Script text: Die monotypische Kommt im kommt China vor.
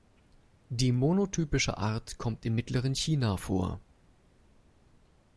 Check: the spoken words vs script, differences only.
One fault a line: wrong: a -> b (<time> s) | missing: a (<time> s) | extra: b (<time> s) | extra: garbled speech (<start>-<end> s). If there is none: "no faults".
extra: Art (1.8 s)
wrong: kommt -> mittleren (2.5 s)